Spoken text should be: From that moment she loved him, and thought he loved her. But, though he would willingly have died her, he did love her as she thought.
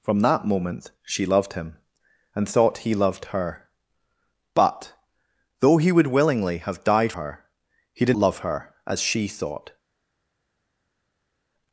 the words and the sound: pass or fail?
pass